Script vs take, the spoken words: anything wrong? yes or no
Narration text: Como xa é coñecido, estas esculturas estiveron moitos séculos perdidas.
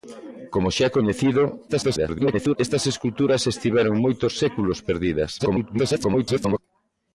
yes